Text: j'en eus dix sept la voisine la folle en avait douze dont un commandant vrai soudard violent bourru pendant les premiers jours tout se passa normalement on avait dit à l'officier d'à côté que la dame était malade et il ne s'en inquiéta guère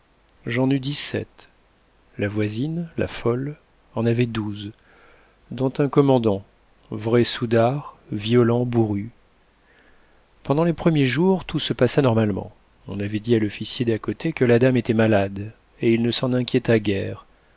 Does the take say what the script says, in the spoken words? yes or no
yes